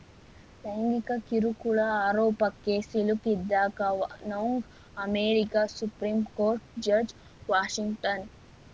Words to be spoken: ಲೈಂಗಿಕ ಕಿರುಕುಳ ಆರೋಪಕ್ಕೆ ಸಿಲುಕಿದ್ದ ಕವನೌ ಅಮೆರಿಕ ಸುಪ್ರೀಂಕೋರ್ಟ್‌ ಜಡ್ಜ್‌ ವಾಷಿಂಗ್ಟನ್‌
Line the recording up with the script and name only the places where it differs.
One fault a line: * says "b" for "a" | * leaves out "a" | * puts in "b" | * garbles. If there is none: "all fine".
all fine